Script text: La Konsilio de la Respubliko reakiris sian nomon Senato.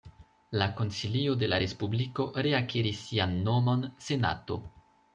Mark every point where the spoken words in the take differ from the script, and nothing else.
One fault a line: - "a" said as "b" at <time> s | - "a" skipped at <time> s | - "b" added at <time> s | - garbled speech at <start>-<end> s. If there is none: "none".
none